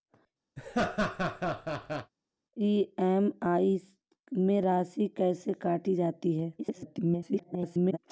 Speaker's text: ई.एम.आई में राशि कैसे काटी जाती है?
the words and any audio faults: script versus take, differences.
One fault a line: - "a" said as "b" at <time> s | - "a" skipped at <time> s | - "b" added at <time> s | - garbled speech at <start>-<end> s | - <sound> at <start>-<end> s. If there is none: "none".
- laugh at 0.6-2.1 s
- garbled speech at 6.6-8.0 s